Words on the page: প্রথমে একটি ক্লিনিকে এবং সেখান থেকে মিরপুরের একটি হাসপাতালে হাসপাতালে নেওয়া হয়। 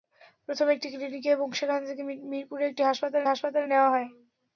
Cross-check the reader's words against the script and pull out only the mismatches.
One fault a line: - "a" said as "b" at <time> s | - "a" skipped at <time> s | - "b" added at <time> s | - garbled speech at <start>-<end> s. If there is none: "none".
none